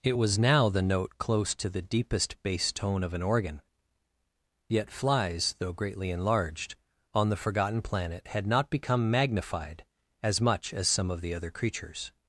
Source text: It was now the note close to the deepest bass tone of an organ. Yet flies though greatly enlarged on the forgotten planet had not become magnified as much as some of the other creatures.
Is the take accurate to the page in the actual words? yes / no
yes